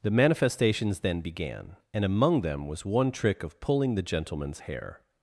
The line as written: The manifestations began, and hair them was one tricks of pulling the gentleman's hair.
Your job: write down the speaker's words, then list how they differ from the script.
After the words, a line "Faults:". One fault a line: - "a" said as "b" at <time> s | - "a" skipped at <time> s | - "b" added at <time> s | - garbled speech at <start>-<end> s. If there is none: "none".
The manifestations then began, and among them was one trick of pulling the gentleman's hair.
Faults:
- "then" added at 1.0 s
- "hair" said as "among" at 2.0 s
- "tricks" said as "trick" at 3.1 s